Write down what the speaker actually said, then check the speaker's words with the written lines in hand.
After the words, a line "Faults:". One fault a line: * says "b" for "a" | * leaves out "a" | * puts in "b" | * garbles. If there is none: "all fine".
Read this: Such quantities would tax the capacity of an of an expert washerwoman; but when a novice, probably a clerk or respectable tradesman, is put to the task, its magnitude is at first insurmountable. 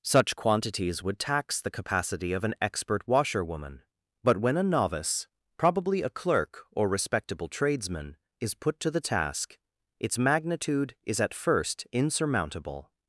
Such quantities would tax the capacity of an expert washerwoman; but when a novice, probably a clerk or respectable tradesman, is put to the task, its magnitude is at first insurmountable.
Faults:
* leaves out "of an"